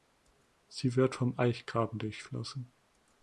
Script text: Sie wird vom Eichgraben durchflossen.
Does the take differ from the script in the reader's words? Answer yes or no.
no